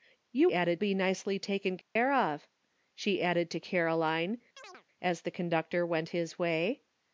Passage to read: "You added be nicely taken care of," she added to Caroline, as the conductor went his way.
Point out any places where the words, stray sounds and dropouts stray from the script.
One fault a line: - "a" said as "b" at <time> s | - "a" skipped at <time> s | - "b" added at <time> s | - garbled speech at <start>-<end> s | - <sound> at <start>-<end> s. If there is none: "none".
- dropout at 1.8-2.0 s
- chirp at 4.6-4.9 s